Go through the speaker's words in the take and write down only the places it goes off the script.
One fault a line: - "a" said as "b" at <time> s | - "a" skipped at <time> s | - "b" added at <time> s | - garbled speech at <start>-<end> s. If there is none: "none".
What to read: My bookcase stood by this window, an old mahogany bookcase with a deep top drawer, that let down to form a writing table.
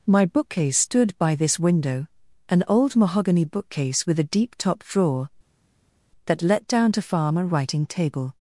- "form" said as "farm" at 7.0 s